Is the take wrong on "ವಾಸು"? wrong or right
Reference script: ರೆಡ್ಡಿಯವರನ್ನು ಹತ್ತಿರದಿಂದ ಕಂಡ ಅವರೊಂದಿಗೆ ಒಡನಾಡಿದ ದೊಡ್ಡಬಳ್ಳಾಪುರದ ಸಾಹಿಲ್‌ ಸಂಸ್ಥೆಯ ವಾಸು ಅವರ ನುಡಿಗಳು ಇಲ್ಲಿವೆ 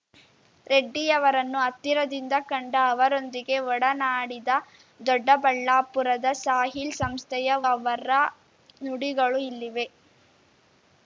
wrong